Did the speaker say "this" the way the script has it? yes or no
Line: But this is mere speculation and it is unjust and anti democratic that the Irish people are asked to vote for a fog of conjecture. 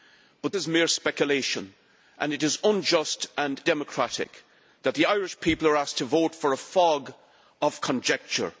no